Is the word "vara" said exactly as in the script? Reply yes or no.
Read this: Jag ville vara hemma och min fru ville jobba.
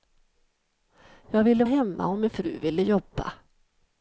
no